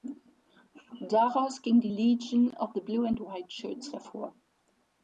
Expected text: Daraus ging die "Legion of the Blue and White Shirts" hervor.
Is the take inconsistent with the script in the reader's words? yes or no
no